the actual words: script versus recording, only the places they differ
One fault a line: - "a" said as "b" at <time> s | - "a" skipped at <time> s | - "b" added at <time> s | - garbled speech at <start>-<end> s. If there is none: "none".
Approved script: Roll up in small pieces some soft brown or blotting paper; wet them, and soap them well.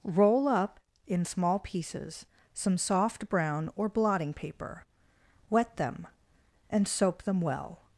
none